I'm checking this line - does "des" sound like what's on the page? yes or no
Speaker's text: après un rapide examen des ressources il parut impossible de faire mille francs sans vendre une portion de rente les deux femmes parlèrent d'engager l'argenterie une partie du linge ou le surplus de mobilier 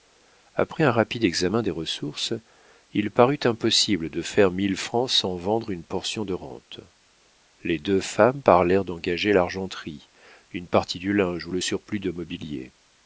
yes